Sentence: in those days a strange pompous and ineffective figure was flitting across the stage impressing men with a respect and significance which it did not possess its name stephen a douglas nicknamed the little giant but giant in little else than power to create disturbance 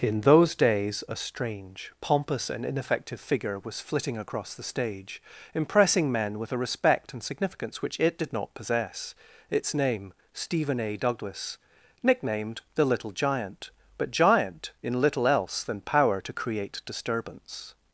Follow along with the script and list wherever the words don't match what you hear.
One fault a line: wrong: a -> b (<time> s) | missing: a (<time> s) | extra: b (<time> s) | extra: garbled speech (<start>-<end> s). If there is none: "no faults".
no faults